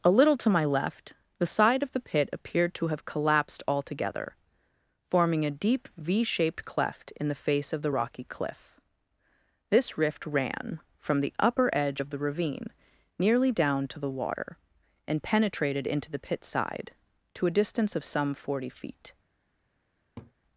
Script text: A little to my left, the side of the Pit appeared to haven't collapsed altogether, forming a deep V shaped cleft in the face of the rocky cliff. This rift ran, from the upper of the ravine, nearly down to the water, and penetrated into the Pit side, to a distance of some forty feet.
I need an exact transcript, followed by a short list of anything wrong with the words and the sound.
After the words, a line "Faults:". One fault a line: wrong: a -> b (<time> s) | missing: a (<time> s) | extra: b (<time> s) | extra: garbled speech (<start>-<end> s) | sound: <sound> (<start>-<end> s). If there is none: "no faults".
A little to my left, the side of the Pit appeared to have collapsed altogether, forming a deep V shaped cleft in the face of the rocky cliff. This rift ran, from the upper edge of the ravine, nearly down to the water, and penetrated into the Pit side, to a distance of some forty feet.
Faults:
wrong: haven't -> have (2.9 s)
extra: edge (11.7 s)
sound: laugh (20.2-20.3 s)